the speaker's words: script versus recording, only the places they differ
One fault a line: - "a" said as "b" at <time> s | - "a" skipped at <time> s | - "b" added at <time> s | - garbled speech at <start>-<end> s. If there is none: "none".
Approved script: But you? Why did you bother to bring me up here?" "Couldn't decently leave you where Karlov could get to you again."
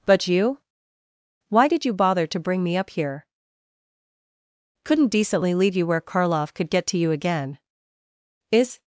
- "Is" added at 8.5 s